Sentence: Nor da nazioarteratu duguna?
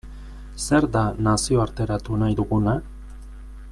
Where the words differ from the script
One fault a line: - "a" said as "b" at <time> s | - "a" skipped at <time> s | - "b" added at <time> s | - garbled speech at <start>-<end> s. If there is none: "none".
- "Nor" said as "Zer" at 0.6 s
- "nahi" added at 2.2 s